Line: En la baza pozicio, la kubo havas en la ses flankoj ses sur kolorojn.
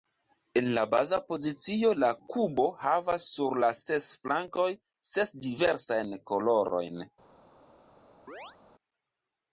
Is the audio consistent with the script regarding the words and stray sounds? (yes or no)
no